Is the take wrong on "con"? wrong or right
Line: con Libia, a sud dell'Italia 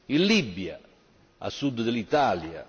wrong